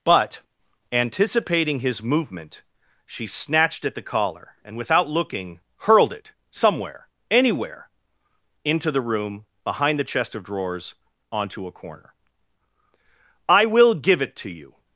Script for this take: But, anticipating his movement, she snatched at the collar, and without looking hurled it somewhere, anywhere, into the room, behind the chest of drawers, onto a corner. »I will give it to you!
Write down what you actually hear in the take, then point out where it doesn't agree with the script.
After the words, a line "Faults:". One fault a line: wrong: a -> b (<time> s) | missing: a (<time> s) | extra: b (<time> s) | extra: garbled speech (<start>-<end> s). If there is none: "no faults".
But, anticipating his movement, she snatched at the collar, and without looking hurled it somewhere, anywhere, into the room, behind the chest of drawers, onto a corner. »I will give it to you!
Faults:
no faults